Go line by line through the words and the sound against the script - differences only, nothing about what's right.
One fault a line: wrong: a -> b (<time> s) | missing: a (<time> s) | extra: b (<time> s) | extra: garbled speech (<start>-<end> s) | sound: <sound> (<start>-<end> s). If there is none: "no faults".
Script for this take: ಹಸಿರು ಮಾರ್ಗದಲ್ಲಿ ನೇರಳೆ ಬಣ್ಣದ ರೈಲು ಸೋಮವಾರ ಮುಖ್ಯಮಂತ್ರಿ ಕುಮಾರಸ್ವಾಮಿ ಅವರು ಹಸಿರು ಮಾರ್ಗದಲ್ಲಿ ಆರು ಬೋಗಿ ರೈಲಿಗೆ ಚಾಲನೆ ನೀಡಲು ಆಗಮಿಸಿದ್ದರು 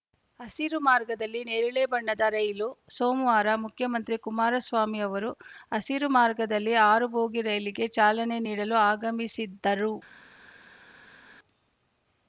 no faults